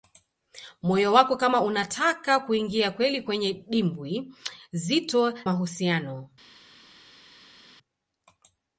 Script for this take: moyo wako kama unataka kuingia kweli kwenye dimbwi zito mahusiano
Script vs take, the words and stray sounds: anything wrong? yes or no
no